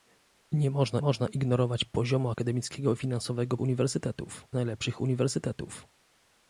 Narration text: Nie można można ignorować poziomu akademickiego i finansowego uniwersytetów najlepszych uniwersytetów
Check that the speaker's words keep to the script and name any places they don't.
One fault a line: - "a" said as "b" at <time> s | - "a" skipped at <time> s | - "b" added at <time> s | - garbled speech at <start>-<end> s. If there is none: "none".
none